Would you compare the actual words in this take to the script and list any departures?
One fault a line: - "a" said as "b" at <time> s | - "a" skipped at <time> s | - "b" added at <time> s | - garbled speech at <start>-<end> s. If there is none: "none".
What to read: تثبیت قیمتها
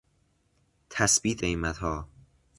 none